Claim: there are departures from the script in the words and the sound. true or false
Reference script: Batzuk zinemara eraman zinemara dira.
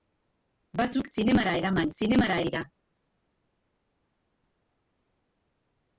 false